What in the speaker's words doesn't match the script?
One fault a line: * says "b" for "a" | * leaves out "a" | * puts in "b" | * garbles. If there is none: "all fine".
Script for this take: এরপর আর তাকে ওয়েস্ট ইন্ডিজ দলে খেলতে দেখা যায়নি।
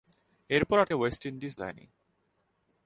* leaves out "তাকে"
* leaves out "দলে খেলতে দেখা"